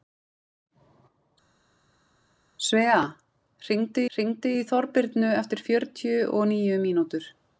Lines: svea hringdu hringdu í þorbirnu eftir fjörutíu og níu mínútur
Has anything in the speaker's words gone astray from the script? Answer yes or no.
no